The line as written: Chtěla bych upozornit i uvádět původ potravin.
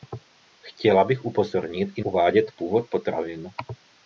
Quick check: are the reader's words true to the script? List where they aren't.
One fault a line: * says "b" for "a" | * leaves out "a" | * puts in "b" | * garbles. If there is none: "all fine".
all fine